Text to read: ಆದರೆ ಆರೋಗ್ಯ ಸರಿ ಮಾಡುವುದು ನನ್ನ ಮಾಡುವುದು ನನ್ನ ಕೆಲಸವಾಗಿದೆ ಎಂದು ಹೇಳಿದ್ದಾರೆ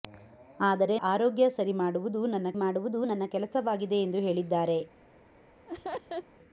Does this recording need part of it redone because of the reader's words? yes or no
no